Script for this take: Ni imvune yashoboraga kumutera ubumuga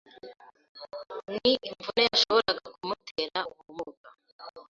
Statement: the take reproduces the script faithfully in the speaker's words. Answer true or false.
true